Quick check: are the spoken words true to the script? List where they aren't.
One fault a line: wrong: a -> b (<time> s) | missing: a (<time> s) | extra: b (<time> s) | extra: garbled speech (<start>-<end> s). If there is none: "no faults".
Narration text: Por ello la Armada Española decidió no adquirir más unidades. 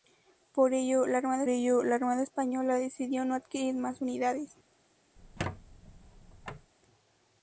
extra: ello la Armada (1.5 s)